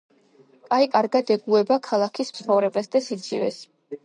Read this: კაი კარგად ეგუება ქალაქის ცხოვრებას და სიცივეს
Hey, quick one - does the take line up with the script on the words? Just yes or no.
yes